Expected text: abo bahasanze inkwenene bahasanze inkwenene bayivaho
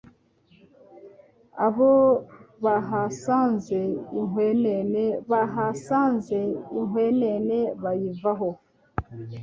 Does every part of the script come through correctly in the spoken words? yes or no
yes